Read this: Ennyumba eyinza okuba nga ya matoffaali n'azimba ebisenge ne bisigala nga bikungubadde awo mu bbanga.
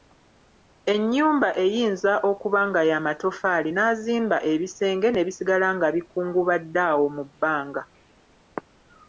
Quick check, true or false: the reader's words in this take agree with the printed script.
true